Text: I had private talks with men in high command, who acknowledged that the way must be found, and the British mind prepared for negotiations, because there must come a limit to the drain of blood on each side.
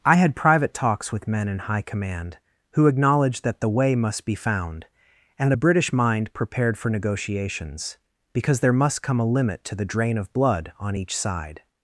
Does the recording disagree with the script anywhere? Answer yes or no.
yes